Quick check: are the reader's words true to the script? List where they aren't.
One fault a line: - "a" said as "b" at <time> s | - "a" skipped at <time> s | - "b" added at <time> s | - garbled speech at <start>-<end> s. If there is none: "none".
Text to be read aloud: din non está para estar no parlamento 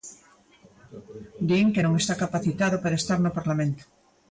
- "que" added at 1.7 s
- "capacitado" added at 2.2 s